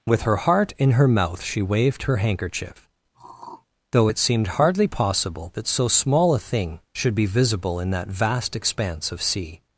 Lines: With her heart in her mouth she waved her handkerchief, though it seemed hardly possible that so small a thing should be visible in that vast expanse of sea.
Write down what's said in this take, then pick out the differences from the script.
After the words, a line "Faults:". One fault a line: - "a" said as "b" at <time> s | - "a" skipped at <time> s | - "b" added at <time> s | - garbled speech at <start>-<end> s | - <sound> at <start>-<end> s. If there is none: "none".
With her heart in her mouth she waved her handkerchief, though it seemed hardly possible that so small a thing should be visible in that vast expanse of sea.
Faults:
- throat clearing at 3.1-3.7 s